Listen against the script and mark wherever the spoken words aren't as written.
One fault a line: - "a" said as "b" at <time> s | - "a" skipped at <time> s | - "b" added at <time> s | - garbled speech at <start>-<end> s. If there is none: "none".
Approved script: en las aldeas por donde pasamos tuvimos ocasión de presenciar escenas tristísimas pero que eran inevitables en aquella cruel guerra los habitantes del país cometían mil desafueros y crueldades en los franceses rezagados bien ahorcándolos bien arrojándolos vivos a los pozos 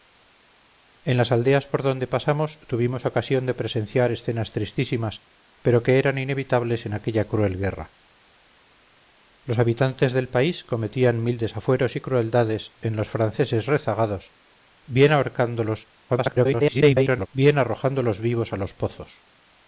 - garbled speech at 16.1-17.3 s